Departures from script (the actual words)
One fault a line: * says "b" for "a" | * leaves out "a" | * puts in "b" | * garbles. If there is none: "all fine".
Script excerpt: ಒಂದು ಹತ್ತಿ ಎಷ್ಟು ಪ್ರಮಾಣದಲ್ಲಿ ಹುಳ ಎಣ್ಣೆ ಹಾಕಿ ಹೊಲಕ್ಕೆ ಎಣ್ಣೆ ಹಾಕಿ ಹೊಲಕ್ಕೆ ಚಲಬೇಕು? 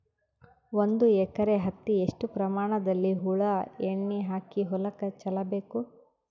* puts in "ಎಕರೆ"
* leaves out "ಎಣ್ಣೆ ಹಾಕಿ ಹೊಲಕ್ಕೆ"